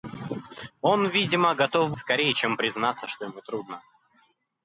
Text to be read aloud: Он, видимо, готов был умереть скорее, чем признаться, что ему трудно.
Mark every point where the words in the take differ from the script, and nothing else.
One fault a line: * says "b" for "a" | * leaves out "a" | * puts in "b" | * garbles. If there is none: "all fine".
* leaves out "был умереть"